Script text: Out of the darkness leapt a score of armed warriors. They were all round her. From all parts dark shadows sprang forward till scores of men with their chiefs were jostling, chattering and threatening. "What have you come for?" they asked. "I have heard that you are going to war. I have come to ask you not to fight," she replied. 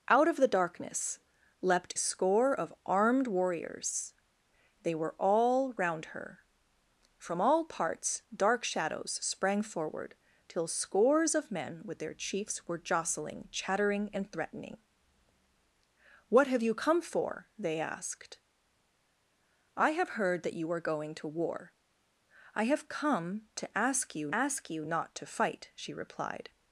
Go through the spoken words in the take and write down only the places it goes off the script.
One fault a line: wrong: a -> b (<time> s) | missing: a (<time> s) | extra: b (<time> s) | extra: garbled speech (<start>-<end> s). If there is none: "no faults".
missing: a (1.9 s)
extra: ask you (24.3 s)